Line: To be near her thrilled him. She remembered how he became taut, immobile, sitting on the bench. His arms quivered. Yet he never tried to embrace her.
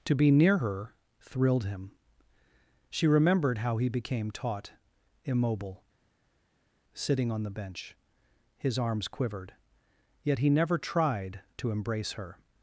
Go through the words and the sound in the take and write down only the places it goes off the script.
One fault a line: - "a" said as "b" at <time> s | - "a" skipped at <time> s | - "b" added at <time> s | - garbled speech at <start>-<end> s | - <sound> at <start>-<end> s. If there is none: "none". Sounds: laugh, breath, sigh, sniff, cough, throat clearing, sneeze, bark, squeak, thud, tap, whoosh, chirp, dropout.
none